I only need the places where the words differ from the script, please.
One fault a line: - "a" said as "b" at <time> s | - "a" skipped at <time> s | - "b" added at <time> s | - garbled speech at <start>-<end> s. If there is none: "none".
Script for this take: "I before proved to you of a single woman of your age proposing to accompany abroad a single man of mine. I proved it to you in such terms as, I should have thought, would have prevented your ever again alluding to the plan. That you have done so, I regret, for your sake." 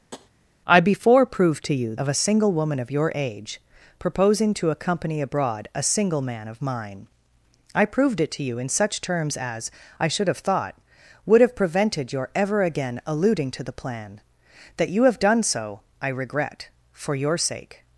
none